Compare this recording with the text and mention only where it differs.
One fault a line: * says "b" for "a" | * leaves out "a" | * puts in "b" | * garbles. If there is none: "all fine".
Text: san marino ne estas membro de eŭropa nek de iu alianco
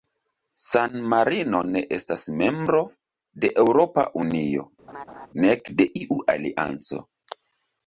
* puts in "unio"